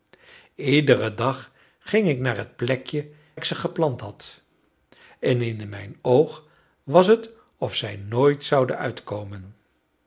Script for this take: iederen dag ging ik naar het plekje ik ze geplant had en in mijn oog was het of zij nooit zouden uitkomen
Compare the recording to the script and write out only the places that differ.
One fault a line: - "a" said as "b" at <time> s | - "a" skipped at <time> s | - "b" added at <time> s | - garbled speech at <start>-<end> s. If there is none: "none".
none